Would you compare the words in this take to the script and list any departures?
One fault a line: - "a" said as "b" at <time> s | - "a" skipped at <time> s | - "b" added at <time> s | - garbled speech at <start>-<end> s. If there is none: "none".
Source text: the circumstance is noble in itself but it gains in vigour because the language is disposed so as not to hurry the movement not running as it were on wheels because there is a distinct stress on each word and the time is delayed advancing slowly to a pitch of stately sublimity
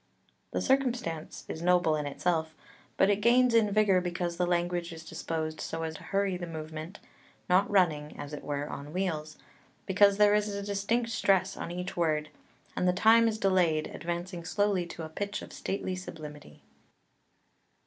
- "not" skipped at 6.0 s